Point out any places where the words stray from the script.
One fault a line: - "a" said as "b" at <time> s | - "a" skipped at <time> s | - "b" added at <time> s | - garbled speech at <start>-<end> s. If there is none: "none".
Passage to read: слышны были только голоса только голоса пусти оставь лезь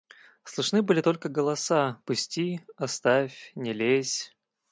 - "только голоса" skipped at 2.0 s
- "не" added at 3.5 s